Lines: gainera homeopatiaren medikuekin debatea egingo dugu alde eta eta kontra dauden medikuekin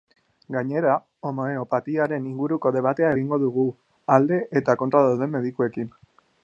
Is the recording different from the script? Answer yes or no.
yes